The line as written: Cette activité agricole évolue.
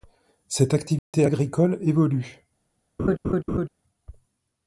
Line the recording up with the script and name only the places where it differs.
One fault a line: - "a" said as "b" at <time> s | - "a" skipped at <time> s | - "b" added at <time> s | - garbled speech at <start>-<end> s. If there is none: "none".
none